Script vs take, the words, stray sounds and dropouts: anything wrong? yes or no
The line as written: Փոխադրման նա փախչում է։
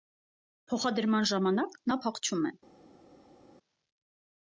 yes